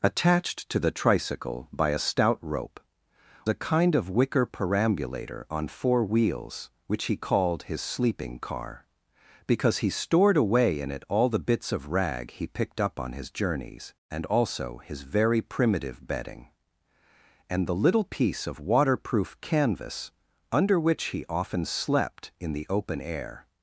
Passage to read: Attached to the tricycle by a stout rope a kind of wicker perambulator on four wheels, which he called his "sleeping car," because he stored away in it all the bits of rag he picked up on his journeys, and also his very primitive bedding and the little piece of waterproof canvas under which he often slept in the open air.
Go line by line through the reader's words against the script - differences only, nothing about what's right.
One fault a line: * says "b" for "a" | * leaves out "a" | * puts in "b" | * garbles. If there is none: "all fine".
all fine